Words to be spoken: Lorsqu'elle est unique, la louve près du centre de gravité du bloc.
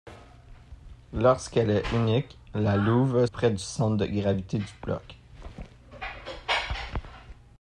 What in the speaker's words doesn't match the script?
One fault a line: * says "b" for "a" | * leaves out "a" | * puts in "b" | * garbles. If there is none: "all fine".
all fine